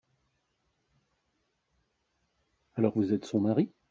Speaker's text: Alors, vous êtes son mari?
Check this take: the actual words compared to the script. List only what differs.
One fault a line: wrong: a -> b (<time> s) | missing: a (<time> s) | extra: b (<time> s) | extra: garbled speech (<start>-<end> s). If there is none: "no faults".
no faults